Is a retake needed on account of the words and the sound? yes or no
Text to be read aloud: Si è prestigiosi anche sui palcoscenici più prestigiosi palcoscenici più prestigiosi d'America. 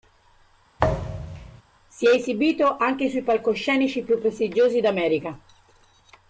yes